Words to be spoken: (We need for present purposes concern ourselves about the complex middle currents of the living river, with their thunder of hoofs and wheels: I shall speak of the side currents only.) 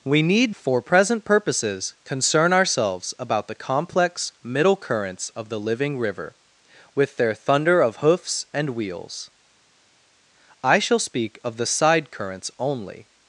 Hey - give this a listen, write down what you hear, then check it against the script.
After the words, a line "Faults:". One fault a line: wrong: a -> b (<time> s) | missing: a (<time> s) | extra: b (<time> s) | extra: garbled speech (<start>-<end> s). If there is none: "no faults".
(We need for present purposes concern ourselves about the complex middle currents of the living river, with their thunder of hoofs and wheels: I shall speak of the side currents only.)
Faults:
no faults